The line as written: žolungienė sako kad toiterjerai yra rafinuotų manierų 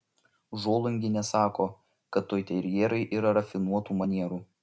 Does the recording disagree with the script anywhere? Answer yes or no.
no